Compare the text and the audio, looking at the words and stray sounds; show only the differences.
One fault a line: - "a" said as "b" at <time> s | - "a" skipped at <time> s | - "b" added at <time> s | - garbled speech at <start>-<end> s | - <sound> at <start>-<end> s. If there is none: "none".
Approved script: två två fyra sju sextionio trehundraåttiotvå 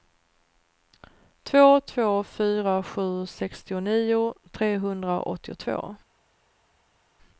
none